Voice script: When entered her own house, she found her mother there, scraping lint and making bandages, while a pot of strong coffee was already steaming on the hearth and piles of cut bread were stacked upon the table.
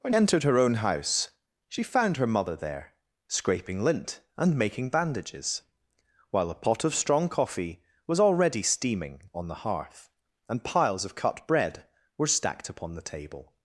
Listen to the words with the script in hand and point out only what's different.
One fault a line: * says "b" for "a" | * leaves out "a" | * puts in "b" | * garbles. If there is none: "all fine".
all fine